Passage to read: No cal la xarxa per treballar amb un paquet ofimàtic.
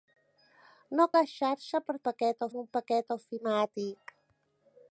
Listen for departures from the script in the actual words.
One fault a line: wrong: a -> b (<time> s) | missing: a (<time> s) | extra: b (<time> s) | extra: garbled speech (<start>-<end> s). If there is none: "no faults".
missing: cal (1.1 s)
wrong: treballar -> paquet (2.1 s)